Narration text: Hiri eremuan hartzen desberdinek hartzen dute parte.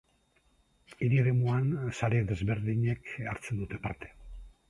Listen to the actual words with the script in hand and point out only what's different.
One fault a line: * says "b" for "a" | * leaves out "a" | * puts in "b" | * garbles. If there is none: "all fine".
* says "sare" for "hartzen"